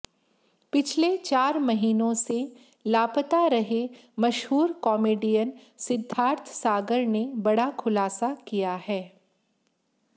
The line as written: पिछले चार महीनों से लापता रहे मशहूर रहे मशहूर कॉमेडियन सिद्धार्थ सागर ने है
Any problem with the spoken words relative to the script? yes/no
yes